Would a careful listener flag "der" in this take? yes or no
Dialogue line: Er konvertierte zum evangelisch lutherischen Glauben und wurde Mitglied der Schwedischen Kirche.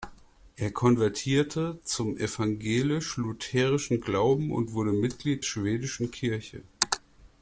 yes